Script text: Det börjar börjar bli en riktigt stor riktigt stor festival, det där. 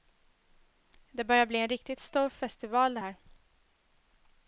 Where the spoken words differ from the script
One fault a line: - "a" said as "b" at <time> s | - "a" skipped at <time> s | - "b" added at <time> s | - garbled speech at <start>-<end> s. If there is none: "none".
- "börjar" skipped at 1.4 s
- "riktigt stor" skipped at 2.3 s
- "där" said as "här" at 3.0 s